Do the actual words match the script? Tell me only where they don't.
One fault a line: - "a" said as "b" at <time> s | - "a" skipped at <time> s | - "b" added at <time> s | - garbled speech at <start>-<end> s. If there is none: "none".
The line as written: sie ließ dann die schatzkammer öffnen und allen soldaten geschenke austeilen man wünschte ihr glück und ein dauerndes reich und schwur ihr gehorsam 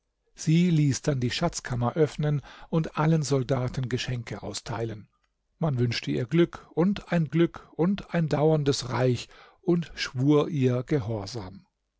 - "glück und ein" added at 7.3 s